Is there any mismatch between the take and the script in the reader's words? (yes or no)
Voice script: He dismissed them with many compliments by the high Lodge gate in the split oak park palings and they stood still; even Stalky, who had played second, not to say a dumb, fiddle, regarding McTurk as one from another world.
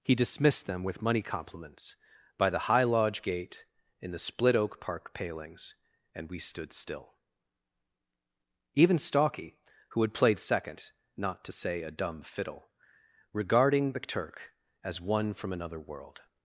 yes